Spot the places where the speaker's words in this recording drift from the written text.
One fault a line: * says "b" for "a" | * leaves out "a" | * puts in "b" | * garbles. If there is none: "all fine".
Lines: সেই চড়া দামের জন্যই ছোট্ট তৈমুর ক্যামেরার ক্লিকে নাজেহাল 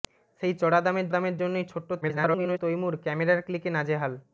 * puts in "দামের"
* garbles